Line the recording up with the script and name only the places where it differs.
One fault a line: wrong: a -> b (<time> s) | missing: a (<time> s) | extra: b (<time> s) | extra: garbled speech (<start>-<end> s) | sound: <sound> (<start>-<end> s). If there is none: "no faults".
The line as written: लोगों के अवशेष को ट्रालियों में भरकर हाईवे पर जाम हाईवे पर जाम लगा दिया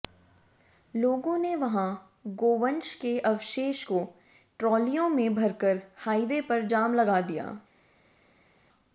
extra: ने वहां गोवंश (1.4 s)
missing: हाईवे पर जाम (6.9 s)